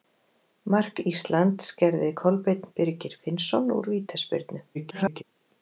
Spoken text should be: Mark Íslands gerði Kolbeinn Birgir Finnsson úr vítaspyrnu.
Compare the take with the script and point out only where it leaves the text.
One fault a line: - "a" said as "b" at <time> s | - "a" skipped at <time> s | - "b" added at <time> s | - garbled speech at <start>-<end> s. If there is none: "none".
- garbled speech at 4.7-5.2 s